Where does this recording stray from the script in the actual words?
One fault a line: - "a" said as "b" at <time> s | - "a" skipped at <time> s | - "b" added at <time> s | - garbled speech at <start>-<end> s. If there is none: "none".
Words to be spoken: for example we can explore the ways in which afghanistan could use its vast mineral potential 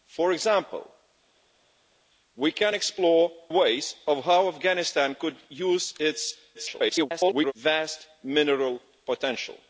- "the" skipped at 3.3 s
- garbled speech at 6.5-7.5 s